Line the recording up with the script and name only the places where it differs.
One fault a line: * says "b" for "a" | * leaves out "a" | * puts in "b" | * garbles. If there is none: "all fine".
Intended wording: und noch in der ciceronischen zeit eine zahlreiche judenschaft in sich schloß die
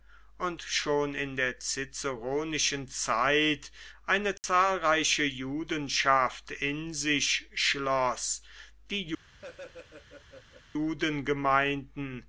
* says "schon" for "noch"